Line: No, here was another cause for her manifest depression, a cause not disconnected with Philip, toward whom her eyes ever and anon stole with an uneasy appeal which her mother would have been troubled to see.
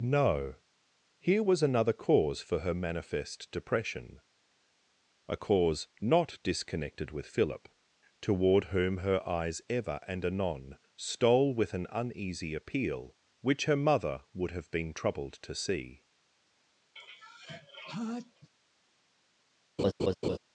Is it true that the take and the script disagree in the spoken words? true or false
false